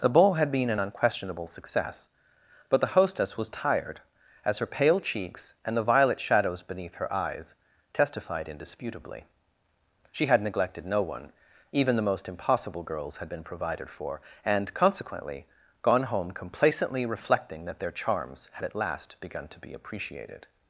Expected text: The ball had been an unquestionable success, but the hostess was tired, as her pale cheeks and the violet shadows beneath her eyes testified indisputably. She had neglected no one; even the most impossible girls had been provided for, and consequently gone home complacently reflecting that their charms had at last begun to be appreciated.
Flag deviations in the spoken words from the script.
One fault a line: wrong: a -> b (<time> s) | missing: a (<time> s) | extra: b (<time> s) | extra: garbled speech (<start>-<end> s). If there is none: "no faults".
no faults